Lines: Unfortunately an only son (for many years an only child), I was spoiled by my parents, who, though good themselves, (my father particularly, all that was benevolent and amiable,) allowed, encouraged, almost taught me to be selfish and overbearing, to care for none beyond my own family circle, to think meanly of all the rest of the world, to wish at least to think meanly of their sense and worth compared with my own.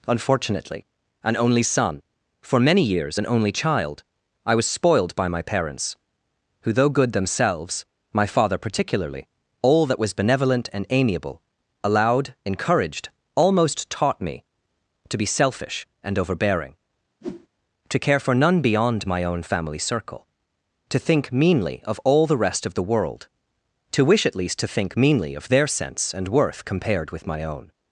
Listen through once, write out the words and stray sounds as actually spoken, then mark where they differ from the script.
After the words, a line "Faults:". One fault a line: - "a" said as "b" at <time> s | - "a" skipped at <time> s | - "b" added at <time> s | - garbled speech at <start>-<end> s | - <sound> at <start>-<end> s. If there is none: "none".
Unfortunately an only son (for many years an only child), I was spoiled by my parents, who, though good themselves, (my father particularly, all that was benevolent and amiable,) allowed, encouraged, almost taught me to be selfish and overbearing, to care for none beyond my own family circle, to think meanly of all the rest of the world, to wish at least to think meanly of their sense and worth compared with my own.
Faults:
- whoosh at 17.2-17.5 s